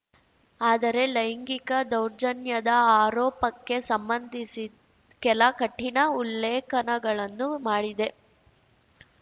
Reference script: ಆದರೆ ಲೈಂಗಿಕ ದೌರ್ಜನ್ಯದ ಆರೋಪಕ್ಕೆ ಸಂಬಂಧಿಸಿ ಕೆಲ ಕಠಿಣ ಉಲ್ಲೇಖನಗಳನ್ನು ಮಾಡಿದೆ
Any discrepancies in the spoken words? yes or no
no